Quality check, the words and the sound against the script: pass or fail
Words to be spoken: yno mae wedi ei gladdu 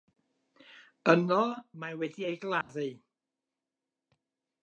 fail